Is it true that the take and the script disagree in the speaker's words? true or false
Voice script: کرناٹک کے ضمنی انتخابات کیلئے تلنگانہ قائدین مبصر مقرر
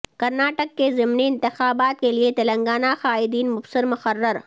false